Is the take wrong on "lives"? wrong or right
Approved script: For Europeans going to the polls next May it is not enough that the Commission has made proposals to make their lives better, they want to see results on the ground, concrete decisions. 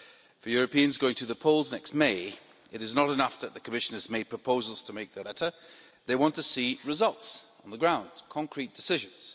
wrong